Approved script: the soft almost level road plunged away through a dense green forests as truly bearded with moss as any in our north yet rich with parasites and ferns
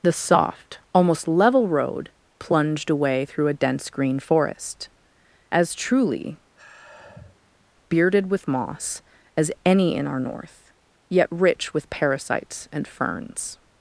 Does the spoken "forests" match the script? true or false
false